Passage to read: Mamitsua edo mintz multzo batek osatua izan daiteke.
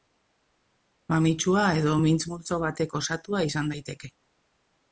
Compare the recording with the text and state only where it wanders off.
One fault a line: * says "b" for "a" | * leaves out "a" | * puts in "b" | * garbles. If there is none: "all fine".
all fine